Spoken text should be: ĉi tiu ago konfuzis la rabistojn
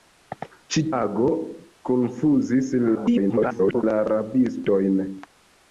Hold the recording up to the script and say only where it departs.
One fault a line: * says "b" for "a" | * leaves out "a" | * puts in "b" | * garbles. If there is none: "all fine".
* leaves out "tiu"
* garbles